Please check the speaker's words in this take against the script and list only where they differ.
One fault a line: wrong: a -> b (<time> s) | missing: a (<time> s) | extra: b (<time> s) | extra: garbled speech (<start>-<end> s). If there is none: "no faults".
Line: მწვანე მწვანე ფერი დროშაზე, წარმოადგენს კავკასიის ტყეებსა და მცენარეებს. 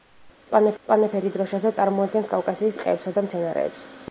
no faults